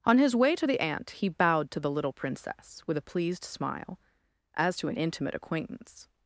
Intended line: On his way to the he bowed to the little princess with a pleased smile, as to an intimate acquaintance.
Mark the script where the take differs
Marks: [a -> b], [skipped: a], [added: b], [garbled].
On his way to the [added: aunt] he bowed to the little princess with a pleased smile, as to an intimate acquaintance.